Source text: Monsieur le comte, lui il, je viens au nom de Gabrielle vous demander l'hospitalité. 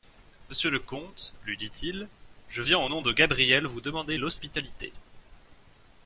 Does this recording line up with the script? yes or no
no